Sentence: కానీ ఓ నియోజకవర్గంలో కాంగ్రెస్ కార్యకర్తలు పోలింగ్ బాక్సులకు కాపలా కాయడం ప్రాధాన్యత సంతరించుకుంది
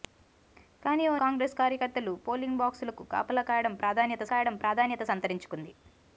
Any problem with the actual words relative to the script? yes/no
yes